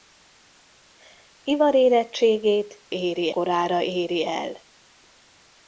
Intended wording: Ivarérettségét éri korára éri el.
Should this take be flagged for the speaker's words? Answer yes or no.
no